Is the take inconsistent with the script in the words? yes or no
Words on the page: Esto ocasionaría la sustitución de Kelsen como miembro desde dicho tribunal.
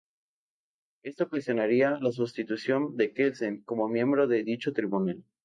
yes